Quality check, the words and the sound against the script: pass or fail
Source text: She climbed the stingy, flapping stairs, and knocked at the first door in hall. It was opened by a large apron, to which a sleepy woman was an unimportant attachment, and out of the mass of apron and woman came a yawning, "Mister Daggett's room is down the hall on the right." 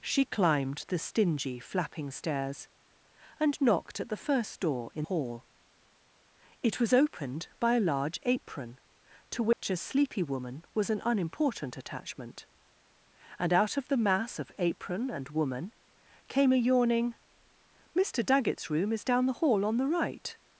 fail